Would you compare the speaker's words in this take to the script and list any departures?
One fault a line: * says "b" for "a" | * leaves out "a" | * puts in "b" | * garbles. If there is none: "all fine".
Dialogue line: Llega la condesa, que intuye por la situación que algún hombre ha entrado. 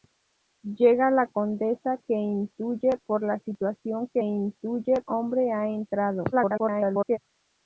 * says "intuye" for "algún"
* garbles